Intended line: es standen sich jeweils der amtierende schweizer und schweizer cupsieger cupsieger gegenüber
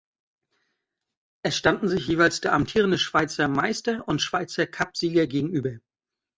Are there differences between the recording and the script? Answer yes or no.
yes